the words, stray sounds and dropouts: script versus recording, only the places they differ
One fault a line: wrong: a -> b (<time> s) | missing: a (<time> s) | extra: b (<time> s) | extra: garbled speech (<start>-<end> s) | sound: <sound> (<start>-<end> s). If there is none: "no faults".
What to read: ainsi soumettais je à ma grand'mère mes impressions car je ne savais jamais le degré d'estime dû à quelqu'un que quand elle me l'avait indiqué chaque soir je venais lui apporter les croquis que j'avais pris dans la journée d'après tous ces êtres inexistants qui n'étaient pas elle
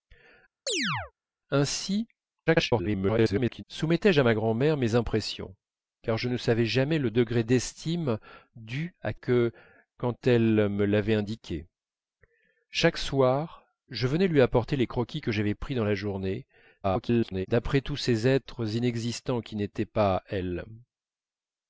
sound: chirp (0.7-1.1 s)
extra: garbled speech (2.5-3.6 s)
missing: quelqu'un (9.1 s)
extra: garbled speech (16.8-17.5 s)